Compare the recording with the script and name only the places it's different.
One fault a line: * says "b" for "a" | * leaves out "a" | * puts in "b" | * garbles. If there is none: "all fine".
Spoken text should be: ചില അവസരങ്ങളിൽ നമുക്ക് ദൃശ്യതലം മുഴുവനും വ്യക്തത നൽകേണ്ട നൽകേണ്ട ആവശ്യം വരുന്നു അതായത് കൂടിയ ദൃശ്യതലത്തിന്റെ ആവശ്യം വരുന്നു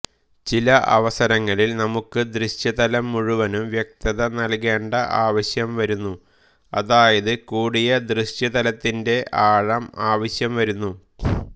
* leaves out "നൽകേണ്ട"
* puts in "ആഴം"